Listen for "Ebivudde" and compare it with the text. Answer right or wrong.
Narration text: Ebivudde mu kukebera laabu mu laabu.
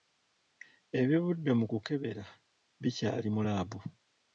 right